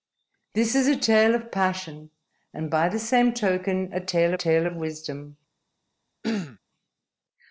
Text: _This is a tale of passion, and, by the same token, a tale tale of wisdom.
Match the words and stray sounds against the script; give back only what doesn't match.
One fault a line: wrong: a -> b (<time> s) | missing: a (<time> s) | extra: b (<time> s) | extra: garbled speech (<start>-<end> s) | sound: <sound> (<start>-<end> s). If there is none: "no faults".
sound: throat clearing (6.2-6.6 s)